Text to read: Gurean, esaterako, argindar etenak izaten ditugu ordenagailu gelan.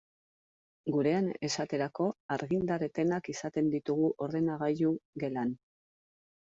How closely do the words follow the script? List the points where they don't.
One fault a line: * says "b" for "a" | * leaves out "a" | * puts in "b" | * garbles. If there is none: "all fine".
all fine